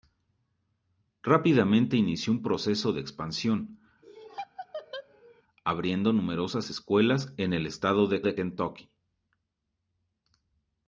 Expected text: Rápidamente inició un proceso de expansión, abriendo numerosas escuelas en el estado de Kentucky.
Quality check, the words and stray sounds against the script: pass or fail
fail